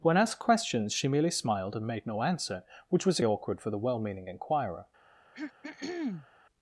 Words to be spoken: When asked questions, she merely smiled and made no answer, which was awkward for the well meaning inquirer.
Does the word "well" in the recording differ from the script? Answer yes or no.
no